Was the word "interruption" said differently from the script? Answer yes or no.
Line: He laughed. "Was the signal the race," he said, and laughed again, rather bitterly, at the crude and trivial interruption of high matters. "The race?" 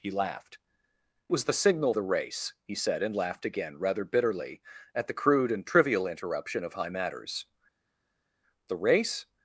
no